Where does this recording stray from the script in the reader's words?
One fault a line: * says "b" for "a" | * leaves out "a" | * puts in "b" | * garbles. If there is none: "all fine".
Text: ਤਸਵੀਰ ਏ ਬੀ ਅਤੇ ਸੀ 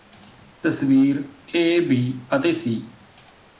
all fine